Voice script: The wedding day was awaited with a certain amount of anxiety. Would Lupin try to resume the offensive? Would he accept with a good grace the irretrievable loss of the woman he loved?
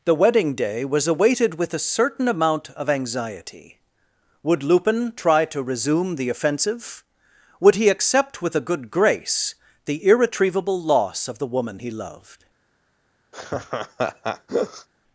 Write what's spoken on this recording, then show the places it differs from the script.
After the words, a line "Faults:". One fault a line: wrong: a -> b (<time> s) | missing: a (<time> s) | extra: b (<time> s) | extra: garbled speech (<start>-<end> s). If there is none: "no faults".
The wedding day was awaited with a certain amount of anxiety. Would Lupin try to resume the offensive? Would he accept with a good grace the irretrievable loss of the woman he loved?
Faults:
no faults